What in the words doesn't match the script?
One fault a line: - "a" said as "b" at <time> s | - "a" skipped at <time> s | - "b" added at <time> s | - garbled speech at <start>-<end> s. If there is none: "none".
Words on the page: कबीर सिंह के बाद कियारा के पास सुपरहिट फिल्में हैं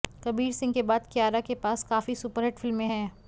- "काफी" added at 1.8 s